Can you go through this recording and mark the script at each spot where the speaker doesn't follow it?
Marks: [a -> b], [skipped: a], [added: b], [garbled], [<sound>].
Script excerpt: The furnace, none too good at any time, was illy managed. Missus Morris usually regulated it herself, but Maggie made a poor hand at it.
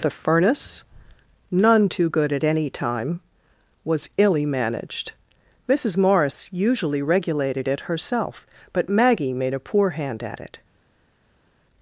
The furnace, none too good at any time, was illy managed. Missus Morris usually regulated it herself, but Maggie made a poor hand at it.